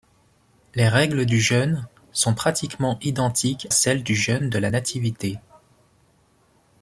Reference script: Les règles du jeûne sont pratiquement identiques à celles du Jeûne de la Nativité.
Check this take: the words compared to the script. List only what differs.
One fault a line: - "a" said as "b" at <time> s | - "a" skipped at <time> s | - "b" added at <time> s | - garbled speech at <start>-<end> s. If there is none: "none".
- "à" skipped at 3.7 s